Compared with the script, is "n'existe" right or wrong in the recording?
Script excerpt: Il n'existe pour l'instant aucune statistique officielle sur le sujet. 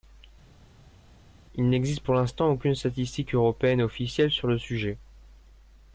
right